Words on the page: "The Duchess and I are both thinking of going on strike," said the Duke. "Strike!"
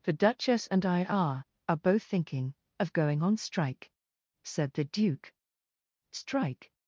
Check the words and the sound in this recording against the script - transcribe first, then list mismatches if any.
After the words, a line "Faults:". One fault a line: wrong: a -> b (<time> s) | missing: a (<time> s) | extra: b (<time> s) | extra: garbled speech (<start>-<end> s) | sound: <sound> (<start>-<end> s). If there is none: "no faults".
"The Duchess and I are are both thinking of going on strike," said the Duke. "Strike!"
Faults:
extra: are (1.7 s)